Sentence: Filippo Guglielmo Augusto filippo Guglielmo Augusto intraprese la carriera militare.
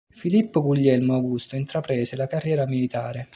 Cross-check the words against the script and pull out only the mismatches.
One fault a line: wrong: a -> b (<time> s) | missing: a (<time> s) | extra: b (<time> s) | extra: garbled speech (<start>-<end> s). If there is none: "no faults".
missing: filippo Guglielmo Augusto (1.6 s)